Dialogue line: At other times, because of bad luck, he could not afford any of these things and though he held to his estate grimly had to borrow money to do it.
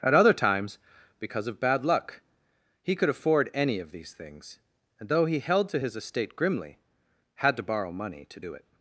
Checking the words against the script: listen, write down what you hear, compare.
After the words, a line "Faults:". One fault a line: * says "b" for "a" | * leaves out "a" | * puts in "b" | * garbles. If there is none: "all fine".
At other times, because of bad luck, he could afford any of these things and though he held to his estate grimly had to borrow money to do it.
Faults:
* leaves out "not"